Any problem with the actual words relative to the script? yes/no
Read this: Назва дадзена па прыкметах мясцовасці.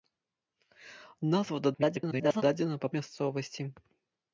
yes